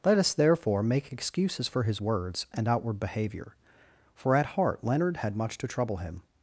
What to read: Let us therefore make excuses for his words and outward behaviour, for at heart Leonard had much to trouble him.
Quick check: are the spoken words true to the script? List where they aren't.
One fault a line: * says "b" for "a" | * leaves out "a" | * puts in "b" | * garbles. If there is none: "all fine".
all fine